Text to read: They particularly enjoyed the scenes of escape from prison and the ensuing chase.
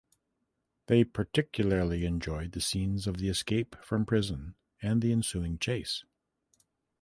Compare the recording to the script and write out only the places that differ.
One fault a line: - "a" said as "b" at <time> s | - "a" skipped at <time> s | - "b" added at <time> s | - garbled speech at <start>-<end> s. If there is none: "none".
- "the" added at 3.2 s